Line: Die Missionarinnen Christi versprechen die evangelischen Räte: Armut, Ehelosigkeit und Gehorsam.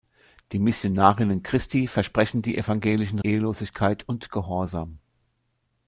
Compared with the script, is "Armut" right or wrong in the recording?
wrong